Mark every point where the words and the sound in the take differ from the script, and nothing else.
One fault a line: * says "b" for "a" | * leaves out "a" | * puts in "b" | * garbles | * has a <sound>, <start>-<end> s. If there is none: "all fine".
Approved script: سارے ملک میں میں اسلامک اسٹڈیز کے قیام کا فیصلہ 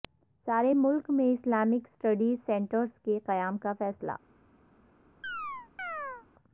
* leaves out "میں"
* puts in "سنٹرس"
* has a chirp, 5.2-6.3 s